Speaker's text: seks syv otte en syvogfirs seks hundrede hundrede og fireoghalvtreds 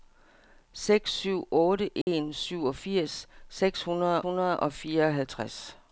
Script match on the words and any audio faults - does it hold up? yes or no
no